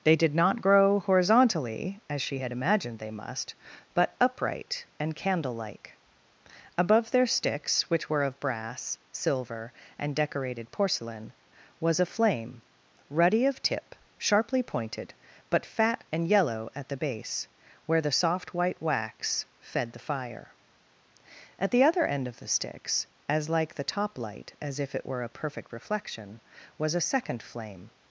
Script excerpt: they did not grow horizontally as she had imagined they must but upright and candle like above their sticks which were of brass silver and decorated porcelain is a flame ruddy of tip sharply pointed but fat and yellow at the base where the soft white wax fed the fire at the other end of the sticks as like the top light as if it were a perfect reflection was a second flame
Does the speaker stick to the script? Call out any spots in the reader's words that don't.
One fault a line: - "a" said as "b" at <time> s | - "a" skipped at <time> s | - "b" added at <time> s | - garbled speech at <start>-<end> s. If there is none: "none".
- "is" said as "was" at 11.8 s